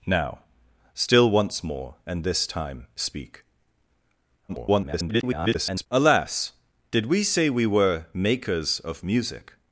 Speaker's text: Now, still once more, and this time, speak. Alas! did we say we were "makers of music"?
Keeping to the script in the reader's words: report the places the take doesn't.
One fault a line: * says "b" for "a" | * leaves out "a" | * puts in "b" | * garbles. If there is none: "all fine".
* garbles